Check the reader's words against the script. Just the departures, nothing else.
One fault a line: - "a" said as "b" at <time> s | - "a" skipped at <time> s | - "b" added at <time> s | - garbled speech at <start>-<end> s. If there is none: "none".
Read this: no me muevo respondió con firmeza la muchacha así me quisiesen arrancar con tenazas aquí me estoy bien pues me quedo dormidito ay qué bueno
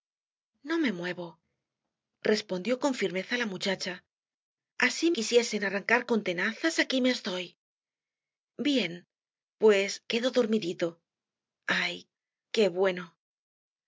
- "me" skipped at 5.1 s
- "me" skipped at 10.0 s